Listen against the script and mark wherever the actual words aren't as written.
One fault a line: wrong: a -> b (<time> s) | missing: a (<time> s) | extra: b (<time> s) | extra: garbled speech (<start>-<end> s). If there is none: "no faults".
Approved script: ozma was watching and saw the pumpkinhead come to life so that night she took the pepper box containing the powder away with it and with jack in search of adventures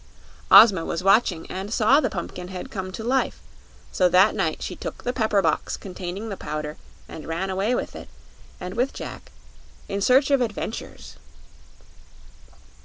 extra: and ran (7.1 s)